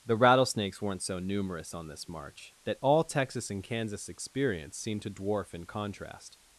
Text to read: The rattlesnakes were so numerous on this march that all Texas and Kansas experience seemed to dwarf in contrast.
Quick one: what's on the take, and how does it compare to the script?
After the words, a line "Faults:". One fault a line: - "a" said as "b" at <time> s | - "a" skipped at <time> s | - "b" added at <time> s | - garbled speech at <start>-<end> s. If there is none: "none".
The rattlesnakes weren't so numerous on this march that all Texas and Kansas experience seemed to dwarf in contrast.
Faults:
- "were" said as "weren't" at 0.8 s